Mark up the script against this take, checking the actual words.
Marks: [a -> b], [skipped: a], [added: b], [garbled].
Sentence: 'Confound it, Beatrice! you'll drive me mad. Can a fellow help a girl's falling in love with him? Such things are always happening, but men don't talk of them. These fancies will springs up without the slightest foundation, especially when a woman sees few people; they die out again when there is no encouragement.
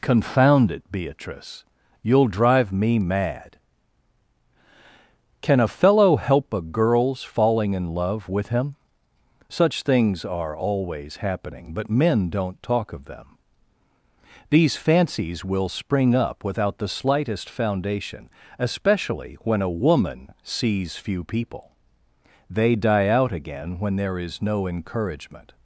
'Confound it, Beatrice! you'll drive me mad. Can a fellow help a girl's falling in love with him? Such things are always happening, but men don't talk of them. These fancies will [springs -> spring] up without the slightest foundation, especially when a woman sees few people; they die out again when there is no encouragement.